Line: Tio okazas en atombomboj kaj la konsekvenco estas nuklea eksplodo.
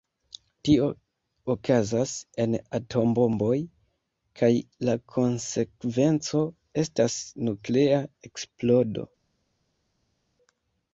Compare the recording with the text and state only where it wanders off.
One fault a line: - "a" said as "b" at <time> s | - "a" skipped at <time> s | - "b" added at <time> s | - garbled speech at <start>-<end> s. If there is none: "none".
none